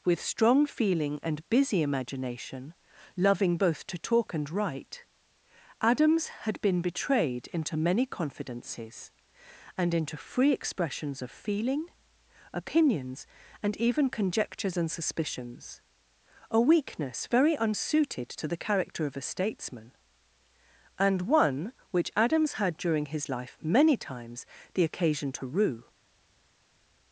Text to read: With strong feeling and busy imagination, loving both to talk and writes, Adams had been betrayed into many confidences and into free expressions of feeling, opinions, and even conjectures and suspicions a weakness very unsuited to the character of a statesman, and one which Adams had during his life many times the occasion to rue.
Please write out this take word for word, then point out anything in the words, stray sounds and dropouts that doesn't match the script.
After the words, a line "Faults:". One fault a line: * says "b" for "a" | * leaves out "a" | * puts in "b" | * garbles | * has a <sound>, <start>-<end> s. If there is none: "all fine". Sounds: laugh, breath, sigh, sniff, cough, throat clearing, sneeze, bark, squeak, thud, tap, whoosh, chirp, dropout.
With strong feeling and busy imagination, loving both to talk and write, Adams had been betrayed into many confidences and into free expressions of feeling, opinions, and even conjectures and suspicions a weakness very unsuited to the character of a statesman, and one which Adams had during his life many times the occasion to rue.
Faults:
* says "write" for "writes"